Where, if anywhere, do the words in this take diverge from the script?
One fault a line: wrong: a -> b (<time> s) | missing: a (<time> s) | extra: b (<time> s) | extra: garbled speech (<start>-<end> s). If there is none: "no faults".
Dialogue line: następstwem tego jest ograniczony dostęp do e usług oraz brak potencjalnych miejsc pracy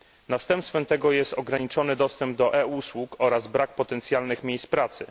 no faults